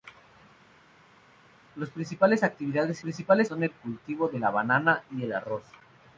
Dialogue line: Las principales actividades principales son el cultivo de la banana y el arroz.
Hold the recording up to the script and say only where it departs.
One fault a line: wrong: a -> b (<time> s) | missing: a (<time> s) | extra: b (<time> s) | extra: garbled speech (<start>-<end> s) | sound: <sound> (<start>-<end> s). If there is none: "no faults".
no faults